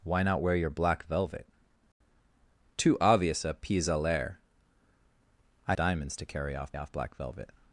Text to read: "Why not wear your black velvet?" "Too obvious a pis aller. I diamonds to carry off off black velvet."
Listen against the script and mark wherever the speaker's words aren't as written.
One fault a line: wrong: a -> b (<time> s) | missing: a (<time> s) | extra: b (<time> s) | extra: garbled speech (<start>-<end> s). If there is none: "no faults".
no faults